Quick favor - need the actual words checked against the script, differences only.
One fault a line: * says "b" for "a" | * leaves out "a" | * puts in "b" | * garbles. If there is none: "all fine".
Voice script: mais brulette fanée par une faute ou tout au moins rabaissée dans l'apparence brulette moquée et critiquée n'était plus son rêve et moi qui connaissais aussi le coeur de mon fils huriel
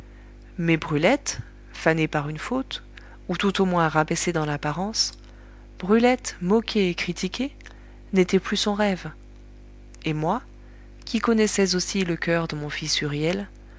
all fine